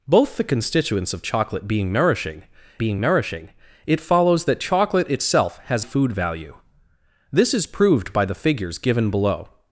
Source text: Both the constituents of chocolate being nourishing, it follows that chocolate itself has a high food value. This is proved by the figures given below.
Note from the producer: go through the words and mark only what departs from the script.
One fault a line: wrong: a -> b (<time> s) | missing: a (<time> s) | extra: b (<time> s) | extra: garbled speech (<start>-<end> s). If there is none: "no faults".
extra: being nourishing (2.8 s)
missing: a high (5.8 s)